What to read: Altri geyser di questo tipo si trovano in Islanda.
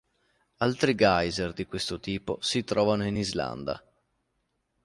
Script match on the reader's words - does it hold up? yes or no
yes